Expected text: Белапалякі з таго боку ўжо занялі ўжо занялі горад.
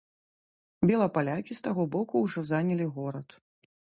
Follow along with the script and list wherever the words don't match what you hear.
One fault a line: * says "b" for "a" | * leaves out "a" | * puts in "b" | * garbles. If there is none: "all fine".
* leaves out "ўжо занялі"